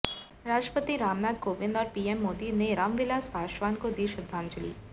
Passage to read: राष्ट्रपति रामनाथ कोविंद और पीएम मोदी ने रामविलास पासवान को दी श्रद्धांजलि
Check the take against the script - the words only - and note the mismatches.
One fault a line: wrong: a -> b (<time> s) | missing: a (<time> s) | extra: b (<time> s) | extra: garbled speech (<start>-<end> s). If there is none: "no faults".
no faults